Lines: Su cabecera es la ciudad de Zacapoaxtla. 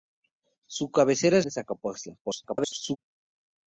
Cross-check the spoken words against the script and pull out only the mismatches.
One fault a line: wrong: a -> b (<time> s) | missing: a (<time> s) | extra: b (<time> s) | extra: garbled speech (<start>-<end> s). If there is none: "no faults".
missing: la ciudad (1.4 s)
extra: garbled speech (2.2-3.0 s)